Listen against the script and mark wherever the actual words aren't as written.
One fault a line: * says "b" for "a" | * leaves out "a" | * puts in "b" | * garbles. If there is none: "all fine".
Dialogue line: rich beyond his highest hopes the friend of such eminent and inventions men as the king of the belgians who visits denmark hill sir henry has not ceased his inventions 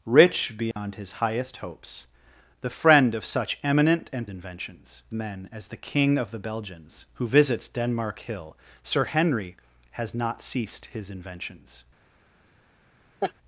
all fine